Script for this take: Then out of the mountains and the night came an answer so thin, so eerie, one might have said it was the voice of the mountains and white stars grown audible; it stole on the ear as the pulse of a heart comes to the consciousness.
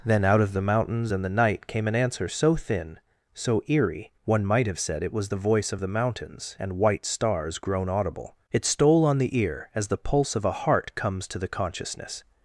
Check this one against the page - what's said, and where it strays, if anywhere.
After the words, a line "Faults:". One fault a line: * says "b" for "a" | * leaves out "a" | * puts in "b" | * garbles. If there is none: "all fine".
Then out of the mountains and the night came an answer so thin, so eerie, one might have said it was the voice of the mountains and white stars grown audible; it stole on the ear as the pulse of a heart comes to the consciousness.
Faults:
all fine